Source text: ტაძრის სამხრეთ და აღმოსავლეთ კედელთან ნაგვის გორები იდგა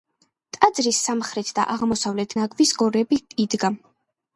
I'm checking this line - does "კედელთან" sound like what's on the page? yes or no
no